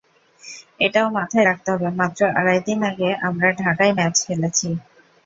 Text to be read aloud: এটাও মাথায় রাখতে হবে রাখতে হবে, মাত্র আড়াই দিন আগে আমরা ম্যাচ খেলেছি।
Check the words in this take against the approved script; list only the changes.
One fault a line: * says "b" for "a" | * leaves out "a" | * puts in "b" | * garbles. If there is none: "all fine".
* leaves out "রাখতে হবে"
* puts in "ঢাকায়"